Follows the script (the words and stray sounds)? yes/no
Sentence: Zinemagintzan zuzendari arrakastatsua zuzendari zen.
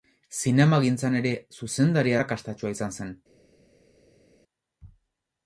no